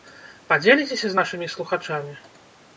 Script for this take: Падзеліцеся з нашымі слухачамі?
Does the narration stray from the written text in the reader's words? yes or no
no